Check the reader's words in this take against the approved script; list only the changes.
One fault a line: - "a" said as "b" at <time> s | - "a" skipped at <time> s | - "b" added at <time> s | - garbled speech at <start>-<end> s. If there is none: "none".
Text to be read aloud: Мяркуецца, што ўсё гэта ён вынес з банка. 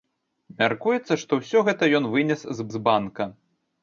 - "з" added at 2.7 s